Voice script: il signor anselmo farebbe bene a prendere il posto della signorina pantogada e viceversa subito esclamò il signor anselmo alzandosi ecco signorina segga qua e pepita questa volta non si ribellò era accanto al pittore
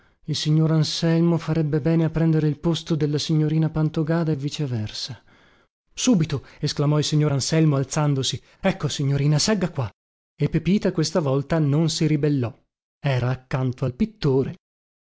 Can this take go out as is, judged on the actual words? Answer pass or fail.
pass